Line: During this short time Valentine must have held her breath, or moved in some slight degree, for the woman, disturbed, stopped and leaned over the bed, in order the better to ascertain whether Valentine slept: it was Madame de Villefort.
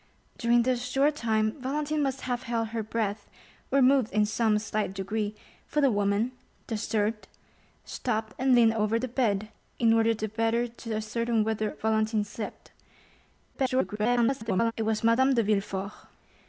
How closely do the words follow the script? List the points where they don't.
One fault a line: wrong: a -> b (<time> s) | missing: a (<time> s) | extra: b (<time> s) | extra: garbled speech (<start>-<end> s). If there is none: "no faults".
extra: garbled speech (13.5-14.7 s)